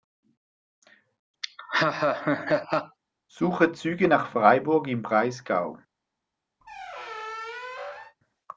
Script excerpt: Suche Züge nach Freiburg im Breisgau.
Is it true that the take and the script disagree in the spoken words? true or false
false